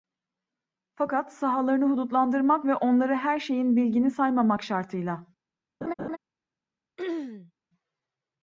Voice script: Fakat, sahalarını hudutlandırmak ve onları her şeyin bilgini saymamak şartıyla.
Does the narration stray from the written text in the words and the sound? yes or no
yes